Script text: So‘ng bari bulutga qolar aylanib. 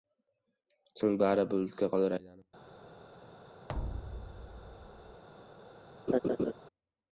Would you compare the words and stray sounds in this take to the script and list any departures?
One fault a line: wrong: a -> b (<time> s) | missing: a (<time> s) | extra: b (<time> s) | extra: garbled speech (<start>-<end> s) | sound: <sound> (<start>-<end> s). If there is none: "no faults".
sound: thud (3.7-5.2 s)
sound: laugh (6.1-6.5 s)